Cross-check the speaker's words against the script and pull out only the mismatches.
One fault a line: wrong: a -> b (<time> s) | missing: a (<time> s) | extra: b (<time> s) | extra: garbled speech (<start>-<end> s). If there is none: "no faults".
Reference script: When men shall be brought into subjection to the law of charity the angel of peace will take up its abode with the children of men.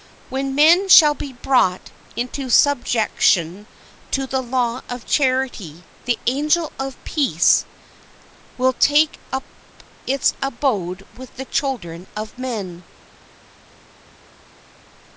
no faults